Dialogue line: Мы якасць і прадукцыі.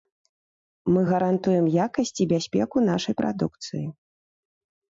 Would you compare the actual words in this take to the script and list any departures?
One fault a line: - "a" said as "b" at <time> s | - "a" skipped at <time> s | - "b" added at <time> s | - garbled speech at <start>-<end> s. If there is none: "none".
- "гарантуем" added at 1.1 s
- "бяспеку нашай" added at 2.3 s